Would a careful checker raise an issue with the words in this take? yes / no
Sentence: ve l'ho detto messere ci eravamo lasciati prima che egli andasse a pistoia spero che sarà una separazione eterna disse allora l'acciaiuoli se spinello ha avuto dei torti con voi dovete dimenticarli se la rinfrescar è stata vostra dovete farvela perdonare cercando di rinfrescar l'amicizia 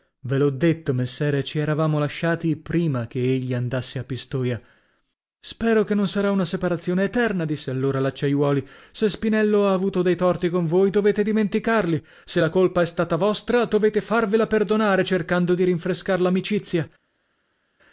yes